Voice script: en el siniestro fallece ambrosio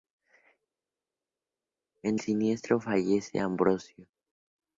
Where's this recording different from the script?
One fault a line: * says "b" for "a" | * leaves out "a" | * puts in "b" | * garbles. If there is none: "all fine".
* leaves out "el"